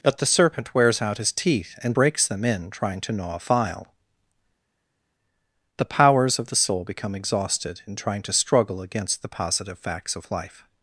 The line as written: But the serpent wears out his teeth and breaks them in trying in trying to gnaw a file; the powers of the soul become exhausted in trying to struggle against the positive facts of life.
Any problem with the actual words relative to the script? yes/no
yes